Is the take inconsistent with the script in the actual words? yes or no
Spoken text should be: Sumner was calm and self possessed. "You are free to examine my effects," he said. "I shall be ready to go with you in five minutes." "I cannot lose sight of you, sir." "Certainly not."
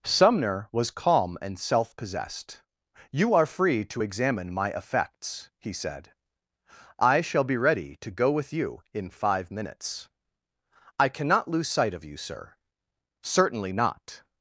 no